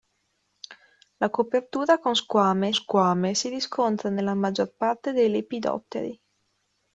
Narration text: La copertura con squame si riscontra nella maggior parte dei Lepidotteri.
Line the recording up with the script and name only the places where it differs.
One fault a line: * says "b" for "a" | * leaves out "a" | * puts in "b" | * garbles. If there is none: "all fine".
* puts in "squame"